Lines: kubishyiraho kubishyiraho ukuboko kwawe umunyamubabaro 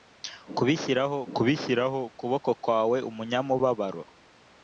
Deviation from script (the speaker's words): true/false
false